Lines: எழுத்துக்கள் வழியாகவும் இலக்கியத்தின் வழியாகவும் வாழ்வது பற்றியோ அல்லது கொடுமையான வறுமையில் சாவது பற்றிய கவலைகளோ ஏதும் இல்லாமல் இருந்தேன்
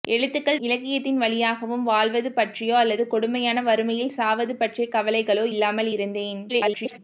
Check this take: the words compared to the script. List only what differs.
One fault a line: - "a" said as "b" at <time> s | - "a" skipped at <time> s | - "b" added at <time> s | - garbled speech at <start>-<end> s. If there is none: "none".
- "வழியாகவும்" skipped at 0.6 s
- "ஏதும்" skipped at 5.5 s
- garbled speech at 6.5-7.0 s